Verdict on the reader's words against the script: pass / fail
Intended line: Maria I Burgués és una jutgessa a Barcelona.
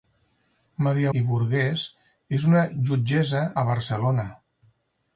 pass